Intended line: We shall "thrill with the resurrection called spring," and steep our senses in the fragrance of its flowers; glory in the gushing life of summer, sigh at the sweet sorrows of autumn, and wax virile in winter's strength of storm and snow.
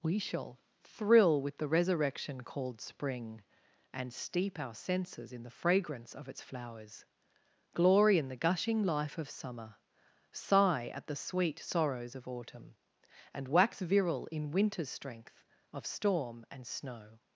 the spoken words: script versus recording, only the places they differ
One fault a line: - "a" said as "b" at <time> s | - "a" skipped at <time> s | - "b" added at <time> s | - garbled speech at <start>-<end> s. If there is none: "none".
none